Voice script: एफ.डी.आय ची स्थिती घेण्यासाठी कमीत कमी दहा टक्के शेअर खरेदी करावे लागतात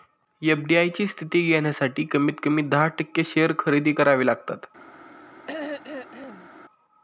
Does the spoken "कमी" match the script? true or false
true